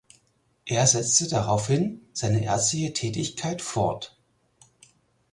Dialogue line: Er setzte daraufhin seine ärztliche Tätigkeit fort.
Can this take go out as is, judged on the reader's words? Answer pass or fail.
pass